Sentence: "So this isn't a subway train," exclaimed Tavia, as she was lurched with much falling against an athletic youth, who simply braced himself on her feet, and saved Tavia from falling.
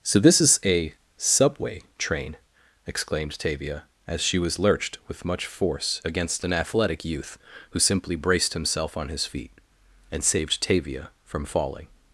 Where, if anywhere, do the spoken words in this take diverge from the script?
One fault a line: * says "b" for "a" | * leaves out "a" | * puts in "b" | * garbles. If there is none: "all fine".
* says "is" for "isn't"
* says "force" for "falling"
* says "his" for "her"